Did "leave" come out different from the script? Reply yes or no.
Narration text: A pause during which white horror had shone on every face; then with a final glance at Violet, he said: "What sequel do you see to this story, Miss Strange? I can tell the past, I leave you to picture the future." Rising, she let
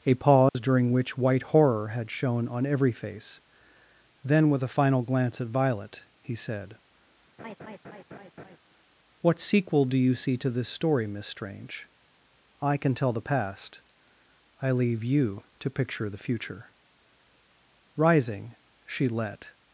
no